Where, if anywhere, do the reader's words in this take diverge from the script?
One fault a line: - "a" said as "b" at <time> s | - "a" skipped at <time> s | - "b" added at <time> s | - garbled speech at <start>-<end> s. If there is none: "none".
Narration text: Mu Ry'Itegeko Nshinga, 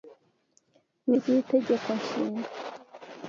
none